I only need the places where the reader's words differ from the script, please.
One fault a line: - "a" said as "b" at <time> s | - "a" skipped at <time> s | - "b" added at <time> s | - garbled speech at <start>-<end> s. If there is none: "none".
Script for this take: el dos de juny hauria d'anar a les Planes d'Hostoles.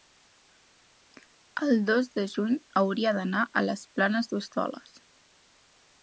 none